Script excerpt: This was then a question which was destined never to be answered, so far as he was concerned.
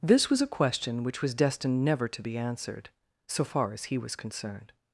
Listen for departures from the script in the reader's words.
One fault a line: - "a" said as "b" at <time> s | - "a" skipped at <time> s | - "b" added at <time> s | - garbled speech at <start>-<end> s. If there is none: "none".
- "then" skipped at 0.4 s